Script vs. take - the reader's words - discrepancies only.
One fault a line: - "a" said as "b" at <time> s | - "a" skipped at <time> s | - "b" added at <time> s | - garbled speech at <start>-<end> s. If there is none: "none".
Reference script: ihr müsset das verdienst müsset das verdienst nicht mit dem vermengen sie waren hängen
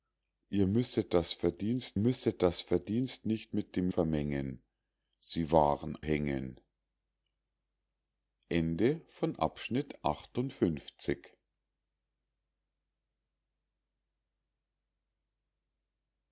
none